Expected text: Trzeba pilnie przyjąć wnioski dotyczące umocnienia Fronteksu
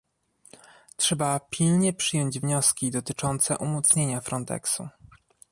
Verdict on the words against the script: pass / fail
pass